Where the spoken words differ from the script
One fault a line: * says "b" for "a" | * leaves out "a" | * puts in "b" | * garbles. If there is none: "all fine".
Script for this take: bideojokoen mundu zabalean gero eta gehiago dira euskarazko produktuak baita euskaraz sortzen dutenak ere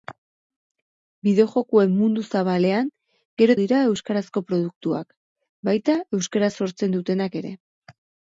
* leaves out "eta gehiago"